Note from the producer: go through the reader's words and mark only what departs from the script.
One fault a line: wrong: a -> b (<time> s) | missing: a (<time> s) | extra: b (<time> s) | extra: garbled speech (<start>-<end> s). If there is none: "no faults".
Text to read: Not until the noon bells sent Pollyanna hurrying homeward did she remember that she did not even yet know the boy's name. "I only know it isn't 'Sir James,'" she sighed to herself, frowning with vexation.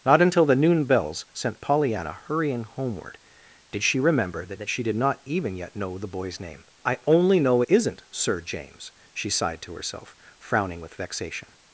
extra: that (4.6 s)
missing: it (7.6 s)